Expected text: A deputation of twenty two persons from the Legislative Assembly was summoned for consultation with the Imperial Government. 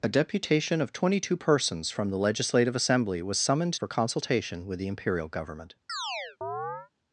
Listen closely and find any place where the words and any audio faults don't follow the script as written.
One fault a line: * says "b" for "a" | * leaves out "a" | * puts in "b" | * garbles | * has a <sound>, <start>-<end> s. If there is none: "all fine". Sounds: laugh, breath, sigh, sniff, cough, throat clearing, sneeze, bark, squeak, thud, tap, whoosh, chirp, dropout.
* has a chirp, 5.9-6.9 s